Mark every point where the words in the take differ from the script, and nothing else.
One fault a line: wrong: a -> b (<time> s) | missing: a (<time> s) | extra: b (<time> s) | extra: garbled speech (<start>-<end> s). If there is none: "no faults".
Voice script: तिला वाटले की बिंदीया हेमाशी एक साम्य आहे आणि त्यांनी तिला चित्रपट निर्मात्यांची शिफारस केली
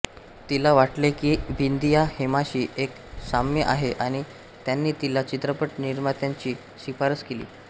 no faults